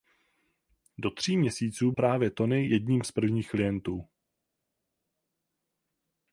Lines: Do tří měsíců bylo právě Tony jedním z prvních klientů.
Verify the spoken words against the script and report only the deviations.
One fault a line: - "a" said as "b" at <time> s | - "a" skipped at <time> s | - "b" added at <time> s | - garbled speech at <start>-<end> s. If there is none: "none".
- "bylo" skipped at 1.9 s